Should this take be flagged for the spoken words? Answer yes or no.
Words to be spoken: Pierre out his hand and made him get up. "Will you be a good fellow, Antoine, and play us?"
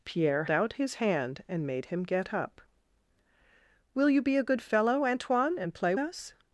no